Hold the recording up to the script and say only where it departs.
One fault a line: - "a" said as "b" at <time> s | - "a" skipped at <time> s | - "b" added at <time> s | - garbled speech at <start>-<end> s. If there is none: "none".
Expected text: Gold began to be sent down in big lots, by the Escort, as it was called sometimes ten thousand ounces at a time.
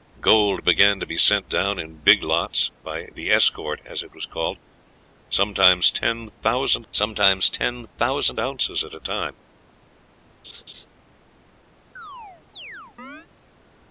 - "sometimes ten thousand" added at 6.9 s